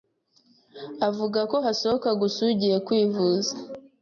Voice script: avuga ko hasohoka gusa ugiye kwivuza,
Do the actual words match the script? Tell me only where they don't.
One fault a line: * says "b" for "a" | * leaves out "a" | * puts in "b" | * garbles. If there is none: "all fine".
all fine